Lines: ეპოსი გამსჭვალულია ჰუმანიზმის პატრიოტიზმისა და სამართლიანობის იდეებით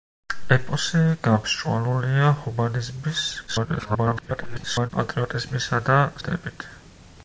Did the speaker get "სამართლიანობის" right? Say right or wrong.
wrong